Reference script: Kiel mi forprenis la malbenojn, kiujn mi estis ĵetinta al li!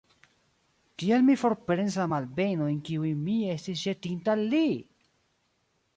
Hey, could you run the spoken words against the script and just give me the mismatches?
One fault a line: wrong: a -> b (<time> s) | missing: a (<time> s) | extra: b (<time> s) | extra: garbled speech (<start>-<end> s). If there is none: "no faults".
no faults